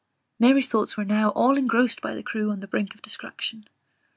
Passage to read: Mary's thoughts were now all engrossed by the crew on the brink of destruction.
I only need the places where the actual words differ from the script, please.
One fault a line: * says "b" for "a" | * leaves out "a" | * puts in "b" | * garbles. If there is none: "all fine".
all fine